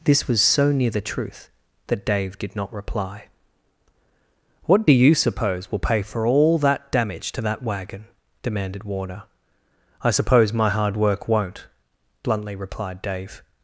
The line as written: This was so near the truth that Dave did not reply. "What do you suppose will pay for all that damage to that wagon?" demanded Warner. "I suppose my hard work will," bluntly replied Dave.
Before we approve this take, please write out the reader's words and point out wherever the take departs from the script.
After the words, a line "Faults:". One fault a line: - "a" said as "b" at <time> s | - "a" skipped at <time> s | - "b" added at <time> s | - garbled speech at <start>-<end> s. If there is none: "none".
This was so near the truth that Dave did not reply. "What do you suppose will pay for all that damage to that wagon?" demanded Warner. "I suppose my hard work won't," bluntly replied Dave.
Faults:
- "will" said as "won't" at 11.3 s